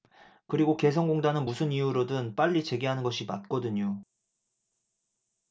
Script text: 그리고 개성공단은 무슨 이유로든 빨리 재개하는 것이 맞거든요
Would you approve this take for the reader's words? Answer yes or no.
yes